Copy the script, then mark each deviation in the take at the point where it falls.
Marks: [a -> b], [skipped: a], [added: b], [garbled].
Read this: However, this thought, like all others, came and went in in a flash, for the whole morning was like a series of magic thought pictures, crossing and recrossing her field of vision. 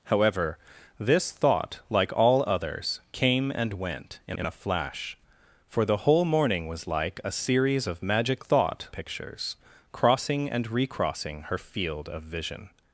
However, this thought, like all others, came and went in in a flash, for the whole morning was like a series of magic thought pictures, crossing and recrossing her field of vision.